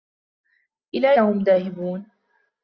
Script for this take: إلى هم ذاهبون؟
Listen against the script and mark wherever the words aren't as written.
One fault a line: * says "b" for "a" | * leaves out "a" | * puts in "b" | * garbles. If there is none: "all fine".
all fine